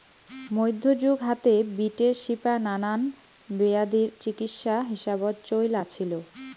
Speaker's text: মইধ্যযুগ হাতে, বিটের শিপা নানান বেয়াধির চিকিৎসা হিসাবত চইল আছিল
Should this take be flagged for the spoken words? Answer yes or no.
no